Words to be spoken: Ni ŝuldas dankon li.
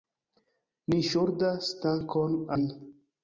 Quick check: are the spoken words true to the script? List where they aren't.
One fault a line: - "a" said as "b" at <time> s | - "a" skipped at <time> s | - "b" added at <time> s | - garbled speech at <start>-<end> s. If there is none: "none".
none